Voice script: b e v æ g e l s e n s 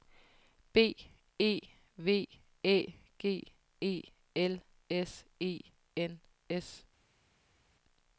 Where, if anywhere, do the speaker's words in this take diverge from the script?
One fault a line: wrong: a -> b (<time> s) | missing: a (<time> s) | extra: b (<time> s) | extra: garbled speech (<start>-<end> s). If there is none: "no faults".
no faults